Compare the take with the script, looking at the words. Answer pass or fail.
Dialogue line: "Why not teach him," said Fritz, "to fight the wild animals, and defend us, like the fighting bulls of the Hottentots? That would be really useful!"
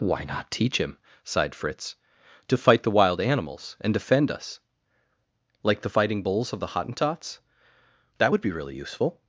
fail